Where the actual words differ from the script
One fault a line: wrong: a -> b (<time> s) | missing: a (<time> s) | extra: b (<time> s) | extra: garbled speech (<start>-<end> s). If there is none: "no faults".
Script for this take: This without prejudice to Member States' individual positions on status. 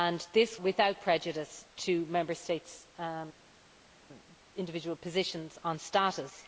no faults